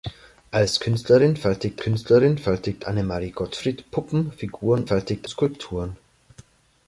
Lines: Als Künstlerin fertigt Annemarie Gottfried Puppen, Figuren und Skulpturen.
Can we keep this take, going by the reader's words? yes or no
no